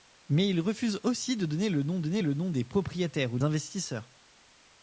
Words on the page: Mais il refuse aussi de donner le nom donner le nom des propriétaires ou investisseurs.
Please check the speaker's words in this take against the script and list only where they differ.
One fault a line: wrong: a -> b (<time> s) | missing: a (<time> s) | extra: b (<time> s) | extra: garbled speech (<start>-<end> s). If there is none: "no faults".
no faults